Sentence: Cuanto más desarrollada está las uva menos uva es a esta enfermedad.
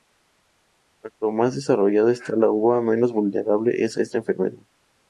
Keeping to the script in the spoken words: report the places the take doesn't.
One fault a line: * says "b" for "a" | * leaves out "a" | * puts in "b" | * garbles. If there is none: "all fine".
* says "la" for "las"
* says "vulnerable" for "uva"